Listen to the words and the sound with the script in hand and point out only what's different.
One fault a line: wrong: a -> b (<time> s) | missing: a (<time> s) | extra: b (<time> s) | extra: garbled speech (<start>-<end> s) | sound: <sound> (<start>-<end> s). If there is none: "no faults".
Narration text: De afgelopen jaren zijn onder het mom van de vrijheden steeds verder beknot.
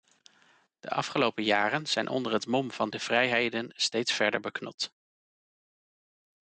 no faults